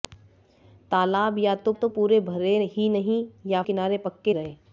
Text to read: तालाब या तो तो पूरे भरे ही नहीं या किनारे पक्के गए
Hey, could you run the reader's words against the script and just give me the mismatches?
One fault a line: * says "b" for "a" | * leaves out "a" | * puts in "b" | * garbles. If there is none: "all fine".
all fine